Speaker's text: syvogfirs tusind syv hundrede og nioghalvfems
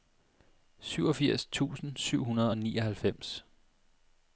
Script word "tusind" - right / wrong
right